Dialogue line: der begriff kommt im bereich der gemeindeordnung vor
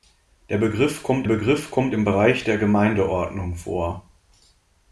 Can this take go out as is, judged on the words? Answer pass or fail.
fail